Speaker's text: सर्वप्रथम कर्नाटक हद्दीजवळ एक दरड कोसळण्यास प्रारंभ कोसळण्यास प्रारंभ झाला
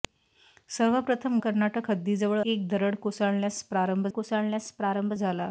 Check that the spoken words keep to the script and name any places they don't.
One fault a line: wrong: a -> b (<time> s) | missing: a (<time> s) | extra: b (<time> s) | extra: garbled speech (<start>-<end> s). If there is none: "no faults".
no faults